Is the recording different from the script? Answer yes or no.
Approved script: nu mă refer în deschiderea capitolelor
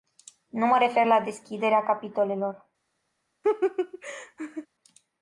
yes